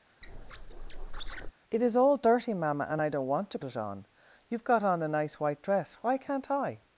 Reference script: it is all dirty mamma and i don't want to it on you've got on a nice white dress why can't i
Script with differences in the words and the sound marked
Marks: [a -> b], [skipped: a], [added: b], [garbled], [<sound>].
[squeak] it is all dirty mamma and i don't want to it on you've got on a nice white dress why can't i